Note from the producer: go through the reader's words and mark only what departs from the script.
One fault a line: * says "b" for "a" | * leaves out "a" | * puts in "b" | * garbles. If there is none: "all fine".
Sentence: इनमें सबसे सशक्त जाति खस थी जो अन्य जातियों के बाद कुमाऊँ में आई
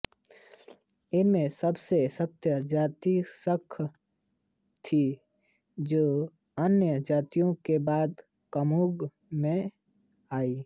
all fine